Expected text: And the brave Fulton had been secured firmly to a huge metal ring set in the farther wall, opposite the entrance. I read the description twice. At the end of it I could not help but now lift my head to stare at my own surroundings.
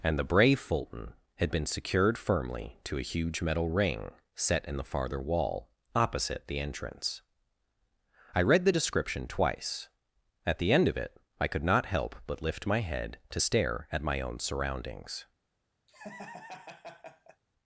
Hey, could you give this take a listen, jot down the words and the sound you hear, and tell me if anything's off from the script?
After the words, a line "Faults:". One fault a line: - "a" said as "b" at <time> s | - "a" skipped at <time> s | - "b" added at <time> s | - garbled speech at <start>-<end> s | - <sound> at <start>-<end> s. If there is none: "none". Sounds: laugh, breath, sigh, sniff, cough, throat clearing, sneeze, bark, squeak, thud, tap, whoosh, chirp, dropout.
And the brave Fulton had been secured firmly to a huge metal ring set in the farther wall, opposite the entrance. I read the description twice. At the end of it I could not help but lift my head to stare at my own surroundings.
Faults:
- "now" skipped at 12.4 s
- laugh at 15.9-17.4 s